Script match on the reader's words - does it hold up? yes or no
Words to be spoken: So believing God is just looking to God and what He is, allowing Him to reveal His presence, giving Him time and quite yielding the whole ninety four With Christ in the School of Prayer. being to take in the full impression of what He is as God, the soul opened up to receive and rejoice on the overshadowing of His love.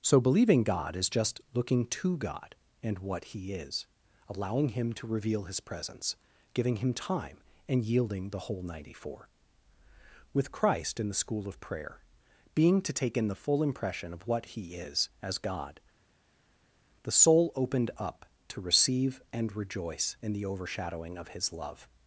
no